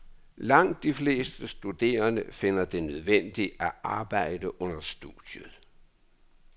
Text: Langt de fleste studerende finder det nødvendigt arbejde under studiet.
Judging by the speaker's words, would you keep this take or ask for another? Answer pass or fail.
fail